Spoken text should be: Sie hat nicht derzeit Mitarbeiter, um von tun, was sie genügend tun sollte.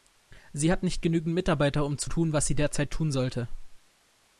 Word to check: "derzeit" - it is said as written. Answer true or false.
false